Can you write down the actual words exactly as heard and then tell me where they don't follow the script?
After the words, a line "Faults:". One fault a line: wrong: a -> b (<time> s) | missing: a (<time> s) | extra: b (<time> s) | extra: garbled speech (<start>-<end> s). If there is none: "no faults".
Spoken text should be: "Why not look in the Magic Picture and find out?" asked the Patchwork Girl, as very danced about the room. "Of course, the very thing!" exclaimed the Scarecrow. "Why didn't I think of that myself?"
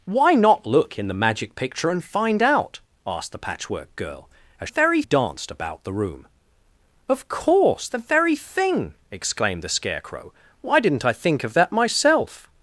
"Why not look in the Magic Picture and find out?" asked the Patchwork Girl, as very danced about the room. "Of course, the very thing!" exclaimed the Scarecrow. "Why didn't I think of that myself?"
Faults:
no faults